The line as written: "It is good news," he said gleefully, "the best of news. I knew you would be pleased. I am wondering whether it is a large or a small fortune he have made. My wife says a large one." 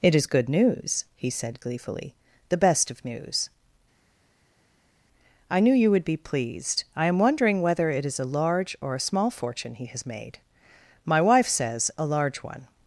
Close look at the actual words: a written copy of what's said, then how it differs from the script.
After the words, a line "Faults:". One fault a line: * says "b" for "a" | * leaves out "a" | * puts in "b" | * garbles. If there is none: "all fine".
"It is good news," he said gleefully, "the best of news. I knew you would be pleased. I am wondering whether it is a large or a small fortune he has made. My wife says a large one."
Faults:
* says "has" for "have"